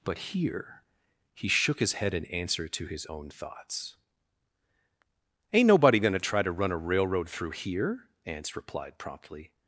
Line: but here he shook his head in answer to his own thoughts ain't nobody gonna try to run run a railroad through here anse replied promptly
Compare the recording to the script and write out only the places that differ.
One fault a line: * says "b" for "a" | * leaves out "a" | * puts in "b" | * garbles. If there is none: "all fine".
* leaves out "run"